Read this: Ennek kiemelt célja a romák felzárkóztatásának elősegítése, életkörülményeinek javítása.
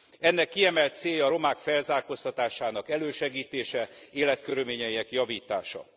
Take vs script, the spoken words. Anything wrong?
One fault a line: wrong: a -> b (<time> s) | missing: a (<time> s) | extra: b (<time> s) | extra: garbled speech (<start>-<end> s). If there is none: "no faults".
no faults